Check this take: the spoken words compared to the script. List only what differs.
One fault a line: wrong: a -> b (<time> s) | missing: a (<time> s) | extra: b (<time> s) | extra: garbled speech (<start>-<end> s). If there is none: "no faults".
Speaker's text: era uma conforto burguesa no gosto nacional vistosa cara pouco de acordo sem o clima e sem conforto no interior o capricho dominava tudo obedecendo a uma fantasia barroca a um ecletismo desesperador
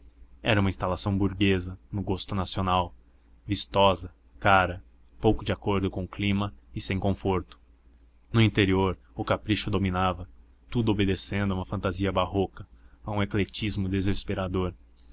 wrong: conforto -> instalação (0.7 s)
wrong: sem -> com (5.9 s)